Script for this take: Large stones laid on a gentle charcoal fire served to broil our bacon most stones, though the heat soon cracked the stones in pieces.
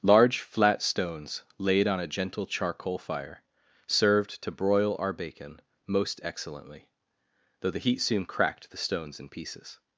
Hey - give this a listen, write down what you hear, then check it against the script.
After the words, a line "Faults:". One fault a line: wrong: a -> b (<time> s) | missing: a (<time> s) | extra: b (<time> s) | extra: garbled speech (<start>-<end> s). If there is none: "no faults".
Large flat stones laid on a gentle charcoal fire served to broil our bacon most excellently, though the heat soon cracked the stones in pieces.
Faults:
extra: flat (0.4 s)
wrong: stones -> excellently (6.2 s)